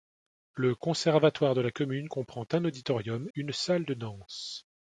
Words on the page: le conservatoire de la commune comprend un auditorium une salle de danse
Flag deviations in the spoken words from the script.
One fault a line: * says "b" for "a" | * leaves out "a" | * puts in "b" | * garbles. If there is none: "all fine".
all fine